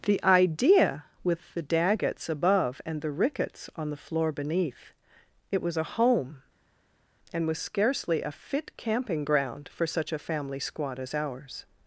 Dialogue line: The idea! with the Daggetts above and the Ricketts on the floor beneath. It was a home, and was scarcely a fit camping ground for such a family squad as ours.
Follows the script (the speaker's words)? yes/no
yes